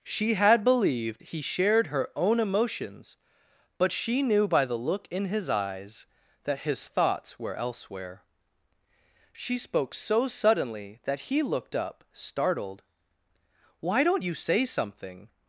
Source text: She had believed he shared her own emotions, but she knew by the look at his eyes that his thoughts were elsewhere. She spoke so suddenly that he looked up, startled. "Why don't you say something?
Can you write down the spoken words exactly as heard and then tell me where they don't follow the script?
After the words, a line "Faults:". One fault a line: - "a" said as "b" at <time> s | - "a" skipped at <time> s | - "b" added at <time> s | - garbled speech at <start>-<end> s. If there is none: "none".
She had believed he shared her own emotions, but she knew by the look in his eyes that his thoughts were elsewhere. She spoke so suddenly that he looked up, startled. "Why don't you say something?
Faults:
- "at" said as "in" at 5.1 s